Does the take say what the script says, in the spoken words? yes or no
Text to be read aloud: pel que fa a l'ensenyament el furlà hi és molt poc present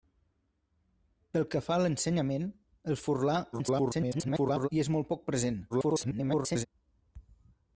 no